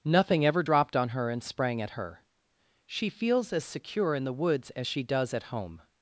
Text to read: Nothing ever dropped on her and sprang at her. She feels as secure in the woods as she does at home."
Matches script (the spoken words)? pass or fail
pass